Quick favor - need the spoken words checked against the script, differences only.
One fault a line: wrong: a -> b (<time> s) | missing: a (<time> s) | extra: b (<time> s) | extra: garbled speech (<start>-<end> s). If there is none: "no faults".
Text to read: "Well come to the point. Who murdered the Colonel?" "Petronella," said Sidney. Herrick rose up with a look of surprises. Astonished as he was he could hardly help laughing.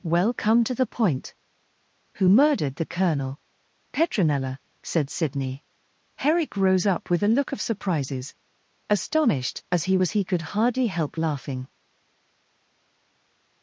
no faults